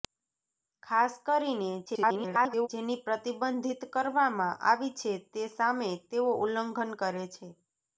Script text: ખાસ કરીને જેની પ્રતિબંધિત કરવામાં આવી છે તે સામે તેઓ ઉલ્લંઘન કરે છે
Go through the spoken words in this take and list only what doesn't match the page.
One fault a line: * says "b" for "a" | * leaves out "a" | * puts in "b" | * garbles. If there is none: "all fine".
* garbles